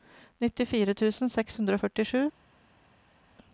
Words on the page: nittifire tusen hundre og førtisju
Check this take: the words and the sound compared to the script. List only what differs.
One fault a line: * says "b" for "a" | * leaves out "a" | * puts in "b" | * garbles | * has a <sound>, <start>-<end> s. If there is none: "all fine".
* puts in "seks"